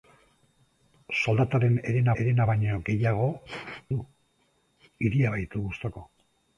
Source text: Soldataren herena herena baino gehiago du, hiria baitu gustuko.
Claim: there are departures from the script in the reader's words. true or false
false